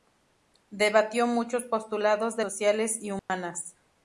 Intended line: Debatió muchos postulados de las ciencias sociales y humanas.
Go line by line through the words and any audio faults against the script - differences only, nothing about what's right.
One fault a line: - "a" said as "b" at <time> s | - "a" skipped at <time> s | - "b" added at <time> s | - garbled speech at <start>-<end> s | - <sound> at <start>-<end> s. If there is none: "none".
- "las ciencias" skipped at 2.5 s
- dropout at 3.2-3.3 s